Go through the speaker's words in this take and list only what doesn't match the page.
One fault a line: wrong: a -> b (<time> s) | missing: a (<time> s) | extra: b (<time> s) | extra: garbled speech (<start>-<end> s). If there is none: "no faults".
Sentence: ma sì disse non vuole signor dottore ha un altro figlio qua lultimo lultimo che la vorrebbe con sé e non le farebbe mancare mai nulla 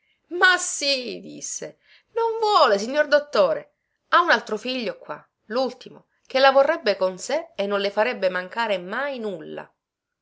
missing: lultimo (6.1 s)